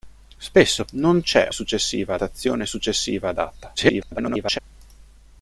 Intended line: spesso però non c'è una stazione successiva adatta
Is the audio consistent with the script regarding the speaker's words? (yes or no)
no